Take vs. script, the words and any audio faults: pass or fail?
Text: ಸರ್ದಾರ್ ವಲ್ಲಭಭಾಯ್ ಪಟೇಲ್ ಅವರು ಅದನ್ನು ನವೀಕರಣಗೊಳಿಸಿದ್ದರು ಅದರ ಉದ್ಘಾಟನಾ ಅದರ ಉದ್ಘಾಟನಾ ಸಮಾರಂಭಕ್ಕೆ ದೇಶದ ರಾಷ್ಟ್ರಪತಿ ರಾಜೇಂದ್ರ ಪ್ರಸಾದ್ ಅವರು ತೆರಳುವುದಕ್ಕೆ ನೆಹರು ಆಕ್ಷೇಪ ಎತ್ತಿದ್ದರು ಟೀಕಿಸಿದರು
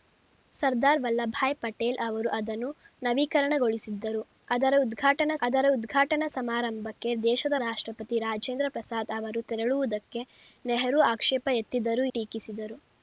pass